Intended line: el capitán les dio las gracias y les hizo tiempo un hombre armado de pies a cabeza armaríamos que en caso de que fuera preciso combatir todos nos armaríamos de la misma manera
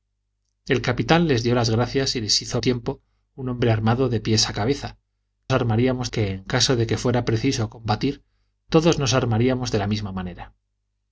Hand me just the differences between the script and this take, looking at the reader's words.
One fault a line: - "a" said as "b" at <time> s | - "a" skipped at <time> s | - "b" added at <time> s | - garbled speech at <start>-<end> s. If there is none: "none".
none